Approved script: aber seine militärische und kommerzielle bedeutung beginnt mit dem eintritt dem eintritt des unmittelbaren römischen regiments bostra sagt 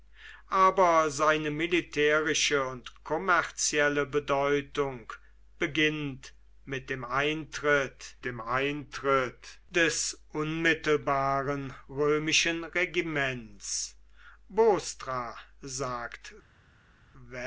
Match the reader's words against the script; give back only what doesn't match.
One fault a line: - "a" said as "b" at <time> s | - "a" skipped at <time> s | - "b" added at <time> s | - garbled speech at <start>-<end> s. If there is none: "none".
none